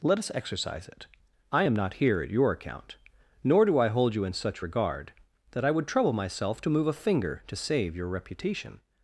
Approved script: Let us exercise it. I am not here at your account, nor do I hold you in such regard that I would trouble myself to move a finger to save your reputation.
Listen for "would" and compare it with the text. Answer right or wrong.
right